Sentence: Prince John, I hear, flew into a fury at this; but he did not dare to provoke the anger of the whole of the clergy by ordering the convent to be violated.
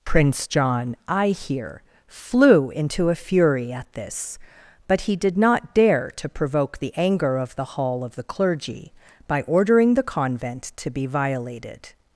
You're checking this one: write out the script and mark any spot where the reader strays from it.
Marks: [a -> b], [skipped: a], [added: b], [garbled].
Prince John, I hear, flew into a fury at this; but he did not dare to provoke the anger of the [whole -> hall] of the clergy by ordering the convent to be violated.